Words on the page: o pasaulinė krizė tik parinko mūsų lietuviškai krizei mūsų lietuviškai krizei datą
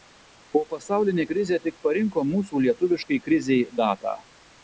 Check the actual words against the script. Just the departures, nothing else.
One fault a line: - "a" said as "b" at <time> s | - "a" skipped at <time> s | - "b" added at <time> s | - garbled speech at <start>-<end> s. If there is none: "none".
- "mūsų lietuviškai krizei" skipped at 3.6 s